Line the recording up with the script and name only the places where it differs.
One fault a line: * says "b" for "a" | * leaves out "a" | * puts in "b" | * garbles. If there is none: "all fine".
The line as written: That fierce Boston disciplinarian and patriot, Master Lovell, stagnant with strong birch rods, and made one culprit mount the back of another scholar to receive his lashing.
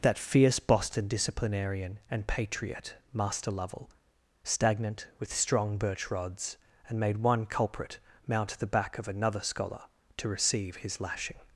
all fine